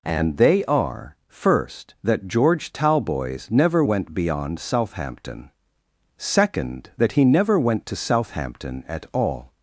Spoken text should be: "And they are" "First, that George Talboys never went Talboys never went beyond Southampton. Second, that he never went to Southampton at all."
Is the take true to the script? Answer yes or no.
no